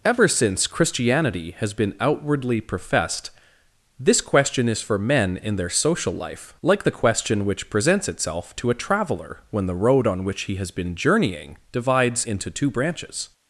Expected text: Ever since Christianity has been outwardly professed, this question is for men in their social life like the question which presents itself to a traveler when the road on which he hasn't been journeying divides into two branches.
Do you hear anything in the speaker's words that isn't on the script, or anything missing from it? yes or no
yes